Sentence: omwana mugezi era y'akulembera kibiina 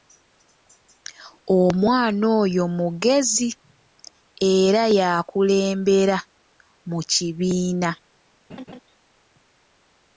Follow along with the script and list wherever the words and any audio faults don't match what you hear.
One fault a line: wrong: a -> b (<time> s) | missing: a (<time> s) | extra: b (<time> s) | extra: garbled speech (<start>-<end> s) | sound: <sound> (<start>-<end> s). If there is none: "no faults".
extra: oyo (2.4 s)
extra: mu (6.9 s)
sound: laugh (8.5-8.8 s)